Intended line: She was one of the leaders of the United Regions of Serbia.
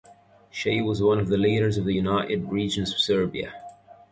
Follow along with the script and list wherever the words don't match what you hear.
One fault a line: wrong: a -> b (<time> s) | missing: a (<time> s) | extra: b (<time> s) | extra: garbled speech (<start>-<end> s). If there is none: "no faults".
no faults